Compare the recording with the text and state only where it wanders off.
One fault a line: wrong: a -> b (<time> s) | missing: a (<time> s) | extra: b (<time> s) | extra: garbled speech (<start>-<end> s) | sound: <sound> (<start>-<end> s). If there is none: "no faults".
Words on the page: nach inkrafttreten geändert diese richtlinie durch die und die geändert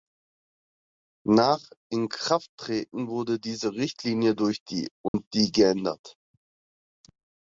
wrong: geändert -> wurde (3.1 s)
sound: dropout (5.1-5.1 s)